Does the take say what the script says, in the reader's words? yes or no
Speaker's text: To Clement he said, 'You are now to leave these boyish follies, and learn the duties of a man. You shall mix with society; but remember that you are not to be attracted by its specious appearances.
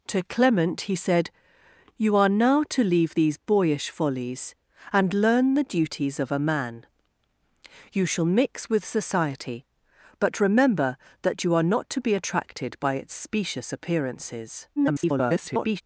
no